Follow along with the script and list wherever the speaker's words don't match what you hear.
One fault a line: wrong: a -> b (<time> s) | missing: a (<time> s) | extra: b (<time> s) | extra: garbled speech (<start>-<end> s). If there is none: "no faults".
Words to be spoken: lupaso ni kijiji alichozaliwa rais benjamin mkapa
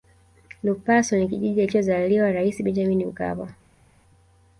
no faults